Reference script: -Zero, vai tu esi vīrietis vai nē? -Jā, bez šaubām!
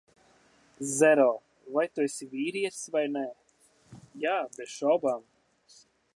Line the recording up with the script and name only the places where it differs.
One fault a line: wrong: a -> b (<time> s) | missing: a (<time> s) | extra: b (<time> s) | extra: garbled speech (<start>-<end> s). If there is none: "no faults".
no faults